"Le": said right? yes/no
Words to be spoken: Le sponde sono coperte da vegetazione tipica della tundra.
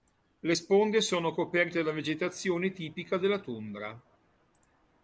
yes